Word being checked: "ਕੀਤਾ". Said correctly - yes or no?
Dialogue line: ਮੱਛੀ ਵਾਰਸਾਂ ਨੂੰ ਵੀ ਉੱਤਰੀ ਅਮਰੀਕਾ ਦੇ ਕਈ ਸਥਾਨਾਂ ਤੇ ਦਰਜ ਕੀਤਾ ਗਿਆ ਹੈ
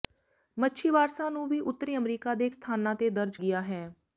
no